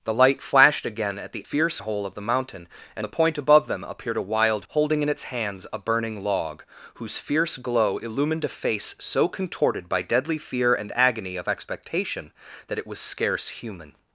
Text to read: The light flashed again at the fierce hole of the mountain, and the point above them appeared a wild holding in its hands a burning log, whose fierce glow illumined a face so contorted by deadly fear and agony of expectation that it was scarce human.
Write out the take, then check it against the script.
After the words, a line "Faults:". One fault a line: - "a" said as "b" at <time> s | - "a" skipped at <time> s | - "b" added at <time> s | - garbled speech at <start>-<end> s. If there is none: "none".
The light flashed again at the fierce hole of the mountain, and the point above them appeared a wild holding in its hands a burning log, whose fierce glow illumined a face so contorted by deadly fear and agony of expectation that it was scarce human.
Faults:
none